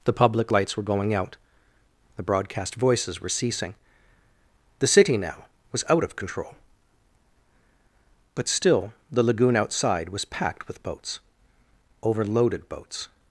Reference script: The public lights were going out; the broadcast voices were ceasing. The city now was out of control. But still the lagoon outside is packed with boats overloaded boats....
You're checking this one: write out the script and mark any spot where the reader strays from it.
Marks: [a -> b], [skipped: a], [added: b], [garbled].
The public lights were going out; the broadcast voices were ceasing. The city now was out of control. But still the lagoon outside [is -> was] packed with boats overloaded boats....